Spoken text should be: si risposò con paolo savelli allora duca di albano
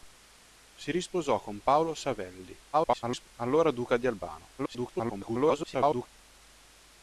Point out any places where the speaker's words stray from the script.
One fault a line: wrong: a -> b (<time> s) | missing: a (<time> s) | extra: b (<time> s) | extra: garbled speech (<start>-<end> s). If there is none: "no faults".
extra: garbled speech (2.7-3.3 s)
extra: garbled speech (4.6-6.1 s)